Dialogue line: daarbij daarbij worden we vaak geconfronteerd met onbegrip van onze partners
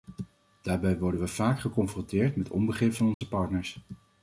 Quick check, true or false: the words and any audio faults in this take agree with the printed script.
false